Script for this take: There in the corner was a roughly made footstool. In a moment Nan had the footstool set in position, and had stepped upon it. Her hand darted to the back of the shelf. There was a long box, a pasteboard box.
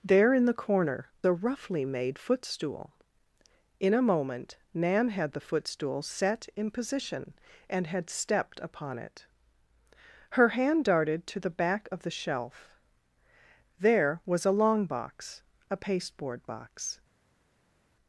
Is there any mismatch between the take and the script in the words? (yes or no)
yes